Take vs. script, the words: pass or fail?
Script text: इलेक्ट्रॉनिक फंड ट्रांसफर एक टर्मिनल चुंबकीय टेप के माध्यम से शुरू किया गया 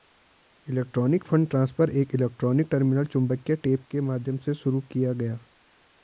fail